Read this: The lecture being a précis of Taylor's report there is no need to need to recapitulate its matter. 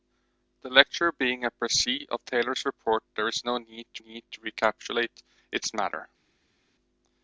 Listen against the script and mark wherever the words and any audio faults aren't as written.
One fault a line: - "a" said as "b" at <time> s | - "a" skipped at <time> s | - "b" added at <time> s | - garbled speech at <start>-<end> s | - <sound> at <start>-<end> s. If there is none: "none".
none